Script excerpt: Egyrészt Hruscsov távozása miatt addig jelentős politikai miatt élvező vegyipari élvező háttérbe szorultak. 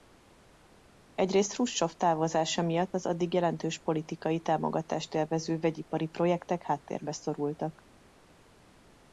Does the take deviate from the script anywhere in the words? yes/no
yes